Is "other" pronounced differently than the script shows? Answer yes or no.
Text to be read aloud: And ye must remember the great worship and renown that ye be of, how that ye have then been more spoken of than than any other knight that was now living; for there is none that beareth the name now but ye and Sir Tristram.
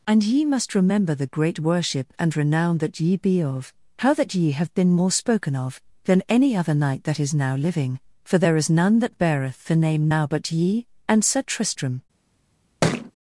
no